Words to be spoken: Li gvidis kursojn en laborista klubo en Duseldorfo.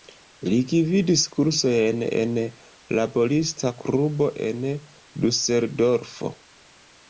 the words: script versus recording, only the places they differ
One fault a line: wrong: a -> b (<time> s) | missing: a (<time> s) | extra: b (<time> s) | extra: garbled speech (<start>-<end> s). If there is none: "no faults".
no faults